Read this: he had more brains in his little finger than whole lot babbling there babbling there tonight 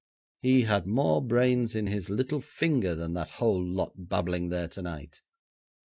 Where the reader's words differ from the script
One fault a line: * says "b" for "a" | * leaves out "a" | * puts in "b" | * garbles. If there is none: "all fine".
* puts in "that"
* leaves out "babbling there"